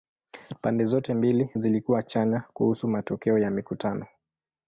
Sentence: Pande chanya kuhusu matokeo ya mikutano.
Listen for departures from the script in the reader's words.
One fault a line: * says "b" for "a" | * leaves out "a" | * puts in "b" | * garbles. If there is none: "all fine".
* puts in "zote mbili zilikuwa"